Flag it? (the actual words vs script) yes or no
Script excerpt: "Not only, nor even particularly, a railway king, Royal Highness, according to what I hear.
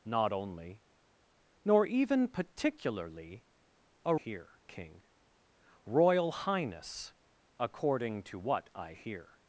yes